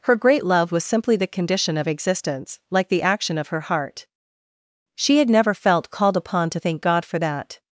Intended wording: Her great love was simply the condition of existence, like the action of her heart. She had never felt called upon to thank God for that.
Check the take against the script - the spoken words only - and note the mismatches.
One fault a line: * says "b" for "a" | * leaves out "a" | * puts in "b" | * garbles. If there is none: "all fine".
all fine